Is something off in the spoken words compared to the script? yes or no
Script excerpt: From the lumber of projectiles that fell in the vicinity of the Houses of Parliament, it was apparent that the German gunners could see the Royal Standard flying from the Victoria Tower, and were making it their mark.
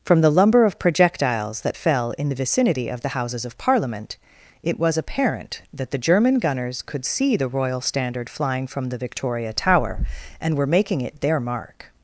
no